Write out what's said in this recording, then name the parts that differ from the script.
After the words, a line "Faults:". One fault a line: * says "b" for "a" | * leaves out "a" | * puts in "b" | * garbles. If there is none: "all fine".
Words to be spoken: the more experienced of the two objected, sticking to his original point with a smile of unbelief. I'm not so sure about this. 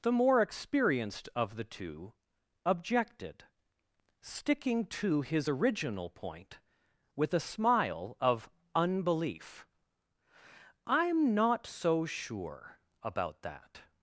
the more experienced of the two objected, sticking to his original point with a smile of unbelief. I'm not so sure about that.
Faults:
* says "that" for "this"